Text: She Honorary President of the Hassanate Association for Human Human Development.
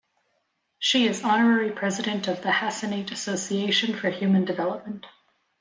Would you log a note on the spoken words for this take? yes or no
yes